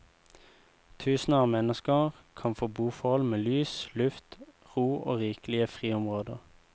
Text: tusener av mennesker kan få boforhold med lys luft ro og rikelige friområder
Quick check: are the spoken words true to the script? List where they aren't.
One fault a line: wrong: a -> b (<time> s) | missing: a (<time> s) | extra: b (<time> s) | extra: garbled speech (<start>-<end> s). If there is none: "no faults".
no faults